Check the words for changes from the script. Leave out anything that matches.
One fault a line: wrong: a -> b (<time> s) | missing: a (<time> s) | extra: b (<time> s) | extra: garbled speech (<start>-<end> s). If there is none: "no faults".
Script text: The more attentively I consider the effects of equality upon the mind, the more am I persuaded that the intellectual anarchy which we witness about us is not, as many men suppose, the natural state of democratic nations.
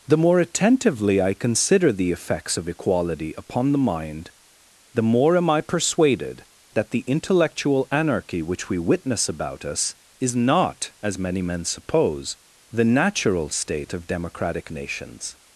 no faults